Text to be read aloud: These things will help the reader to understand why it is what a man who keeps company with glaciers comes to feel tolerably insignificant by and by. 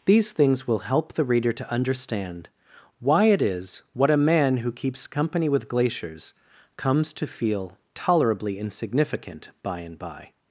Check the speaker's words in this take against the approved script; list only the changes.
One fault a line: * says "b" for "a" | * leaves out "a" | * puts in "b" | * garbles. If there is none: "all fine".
all fine